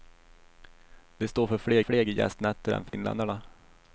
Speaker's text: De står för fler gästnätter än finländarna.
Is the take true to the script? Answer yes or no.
no